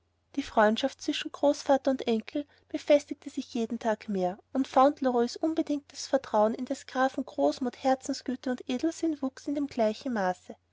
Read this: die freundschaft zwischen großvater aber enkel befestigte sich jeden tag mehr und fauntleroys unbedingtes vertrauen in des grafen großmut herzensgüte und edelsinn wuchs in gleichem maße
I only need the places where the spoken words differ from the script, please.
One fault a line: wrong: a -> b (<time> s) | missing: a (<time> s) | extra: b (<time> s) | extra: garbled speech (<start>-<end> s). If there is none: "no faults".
wrong: aber -> und (1.9 s)